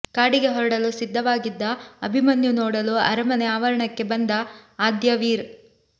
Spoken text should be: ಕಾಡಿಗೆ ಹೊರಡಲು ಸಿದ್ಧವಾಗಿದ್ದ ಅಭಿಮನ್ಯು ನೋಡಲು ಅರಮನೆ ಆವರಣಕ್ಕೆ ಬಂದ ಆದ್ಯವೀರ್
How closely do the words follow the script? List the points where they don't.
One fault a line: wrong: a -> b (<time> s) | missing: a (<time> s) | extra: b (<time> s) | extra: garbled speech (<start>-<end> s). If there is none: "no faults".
no faults